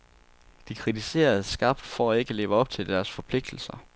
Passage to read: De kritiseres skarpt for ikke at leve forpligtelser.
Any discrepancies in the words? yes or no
yes